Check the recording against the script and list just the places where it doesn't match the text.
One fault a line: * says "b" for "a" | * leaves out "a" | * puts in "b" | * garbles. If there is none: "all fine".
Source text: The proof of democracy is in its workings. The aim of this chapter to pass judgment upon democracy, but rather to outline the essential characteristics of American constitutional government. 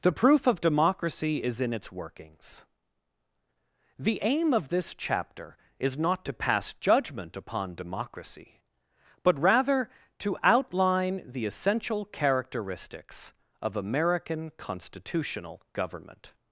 * puts in "is not"